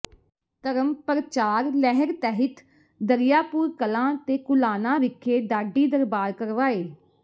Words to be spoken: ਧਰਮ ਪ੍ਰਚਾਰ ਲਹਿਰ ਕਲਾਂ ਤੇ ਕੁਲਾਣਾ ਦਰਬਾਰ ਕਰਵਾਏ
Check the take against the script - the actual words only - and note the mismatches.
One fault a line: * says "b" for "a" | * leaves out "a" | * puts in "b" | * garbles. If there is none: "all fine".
* puts in "ਤਹਿਤ ਦਰੀਆਪੁਰ"
* puts in "ਵਿਖੇ ਢਾਡੀ"